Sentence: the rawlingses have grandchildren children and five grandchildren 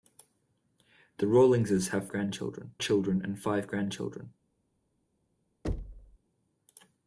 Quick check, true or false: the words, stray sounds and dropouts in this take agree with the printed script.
false